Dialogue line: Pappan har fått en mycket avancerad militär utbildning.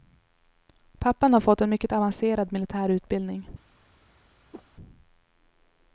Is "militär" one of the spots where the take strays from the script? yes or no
no